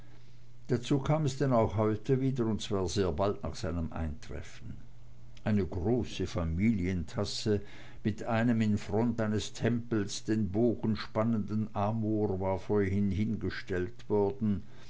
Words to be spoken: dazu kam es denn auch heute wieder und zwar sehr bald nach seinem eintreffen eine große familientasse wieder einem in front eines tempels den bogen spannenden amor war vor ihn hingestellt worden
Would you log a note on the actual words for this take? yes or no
yes